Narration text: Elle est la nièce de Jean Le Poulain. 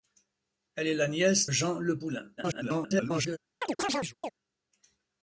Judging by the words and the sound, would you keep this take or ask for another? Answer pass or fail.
fail